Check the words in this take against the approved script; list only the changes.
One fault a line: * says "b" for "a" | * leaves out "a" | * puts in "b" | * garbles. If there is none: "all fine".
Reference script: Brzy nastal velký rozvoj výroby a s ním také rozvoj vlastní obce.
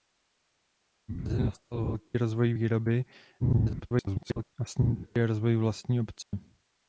* garbles